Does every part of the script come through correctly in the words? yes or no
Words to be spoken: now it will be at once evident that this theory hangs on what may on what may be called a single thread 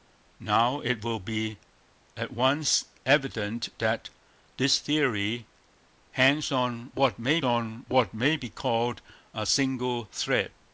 yes